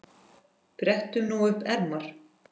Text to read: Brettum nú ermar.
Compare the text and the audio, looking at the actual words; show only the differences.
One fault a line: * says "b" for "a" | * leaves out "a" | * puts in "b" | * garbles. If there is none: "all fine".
* puts in "upp"